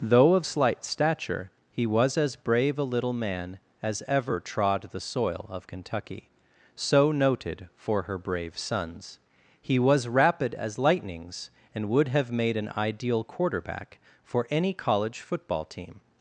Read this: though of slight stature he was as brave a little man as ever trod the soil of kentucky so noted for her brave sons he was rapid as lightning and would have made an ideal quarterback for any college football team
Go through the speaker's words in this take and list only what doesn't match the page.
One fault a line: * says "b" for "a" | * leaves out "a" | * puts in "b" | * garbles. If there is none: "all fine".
* says "lightnings" for "lightning"